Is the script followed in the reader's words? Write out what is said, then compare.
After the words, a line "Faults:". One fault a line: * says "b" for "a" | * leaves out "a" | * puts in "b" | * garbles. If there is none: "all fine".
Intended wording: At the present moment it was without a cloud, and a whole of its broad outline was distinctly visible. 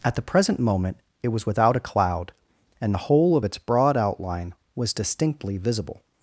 At the present moment it was without a cloud, and the whole of its broad outline was distinctly visible.
Faults:
* says "the" for "a"